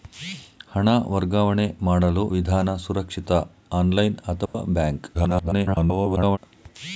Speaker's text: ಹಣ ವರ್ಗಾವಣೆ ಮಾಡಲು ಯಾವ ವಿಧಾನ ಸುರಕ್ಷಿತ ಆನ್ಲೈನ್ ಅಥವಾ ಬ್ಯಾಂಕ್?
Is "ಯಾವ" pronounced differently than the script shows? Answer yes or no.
yes